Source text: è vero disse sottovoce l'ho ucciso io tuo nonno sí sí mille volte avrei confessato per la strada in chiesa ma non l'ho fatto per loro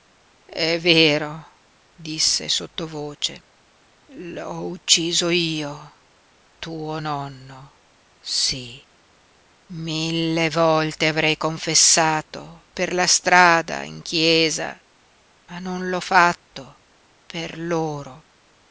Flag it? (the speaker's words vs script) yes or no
yes